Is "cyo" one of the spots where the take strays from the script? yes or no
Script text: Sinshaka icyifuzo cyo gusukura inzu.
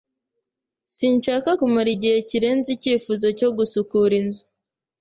no